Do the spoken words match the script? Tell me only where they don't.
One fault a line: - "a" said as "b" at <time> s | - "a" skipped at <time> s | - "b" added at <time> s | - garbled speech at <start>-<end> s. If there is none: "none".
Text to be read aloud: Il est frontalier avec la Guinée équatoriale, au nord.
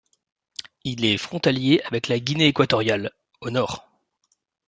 none